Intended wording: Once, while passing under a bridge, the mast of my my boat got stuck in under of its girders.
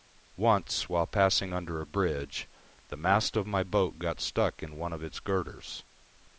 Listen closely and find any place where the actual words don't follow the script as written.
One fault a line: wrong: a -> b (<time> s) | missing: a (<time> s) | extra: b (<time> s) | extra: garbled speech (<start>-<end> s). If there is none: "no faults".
missing: my (3.6 s)
wrong: under -> one (4.8 s)